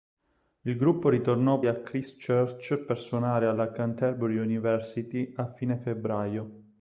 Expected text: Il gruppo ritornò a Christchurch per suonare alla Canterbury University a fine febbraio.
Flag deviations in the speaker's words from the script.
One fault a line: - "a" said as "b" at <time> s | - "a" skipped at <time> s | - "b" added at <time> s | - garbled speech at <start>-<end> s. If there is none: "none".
none